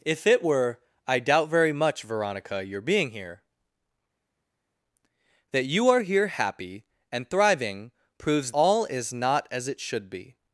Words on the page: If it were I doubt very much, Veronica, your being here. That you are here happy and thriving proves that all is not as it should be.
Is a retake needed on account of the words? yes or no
yes